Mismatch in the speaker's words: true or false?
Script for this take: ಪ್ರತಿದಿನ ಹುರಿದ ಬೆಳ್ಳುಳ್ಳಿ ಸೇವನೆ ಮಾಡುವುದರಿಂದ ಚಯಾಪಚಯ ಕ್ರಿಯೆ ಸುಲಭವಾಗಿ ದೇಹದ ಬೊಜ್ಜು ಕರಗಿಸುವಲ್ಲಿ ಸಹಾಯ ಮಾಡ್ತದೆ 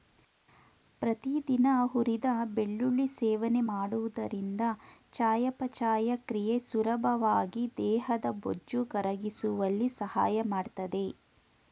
false